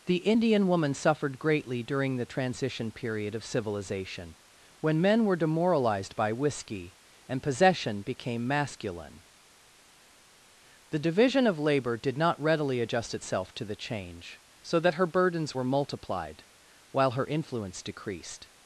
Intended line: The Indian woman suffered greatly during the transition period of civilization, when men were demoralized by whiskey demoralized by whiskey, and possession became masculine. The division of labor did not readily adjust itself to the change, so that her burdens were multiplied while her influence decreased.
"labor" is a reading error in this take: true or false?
false